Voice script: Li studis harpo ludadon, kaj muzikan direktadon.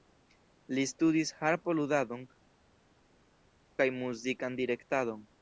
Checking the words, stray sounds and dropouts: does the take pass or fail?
pass